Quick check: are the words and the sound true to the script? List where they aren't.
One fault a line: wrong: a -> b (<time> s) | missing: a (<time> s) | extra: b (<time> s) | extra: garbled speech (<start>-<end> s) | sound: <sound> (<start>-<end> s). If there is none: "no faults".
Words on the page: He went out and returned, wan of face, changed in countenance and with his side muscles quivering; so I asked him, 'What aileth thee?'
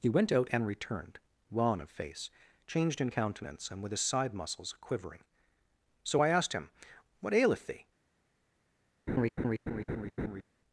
sound: laugh (9.1-10.4 s)